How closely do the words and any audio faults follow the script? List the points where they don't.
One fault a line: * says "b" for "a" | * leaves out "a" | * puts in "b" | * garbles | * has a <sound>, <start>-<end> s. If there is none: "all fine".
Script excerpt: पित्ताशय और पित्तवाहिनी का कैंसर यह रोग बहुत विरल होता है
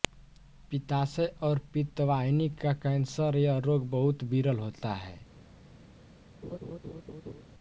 * has a laugh, 6.4-7.4 s